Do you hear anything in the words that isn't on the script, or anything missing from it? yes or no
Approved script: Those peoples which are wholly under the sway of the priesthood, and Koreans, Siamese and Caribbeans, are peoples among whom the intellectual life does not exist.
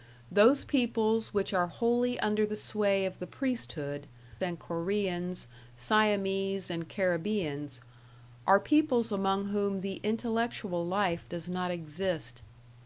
no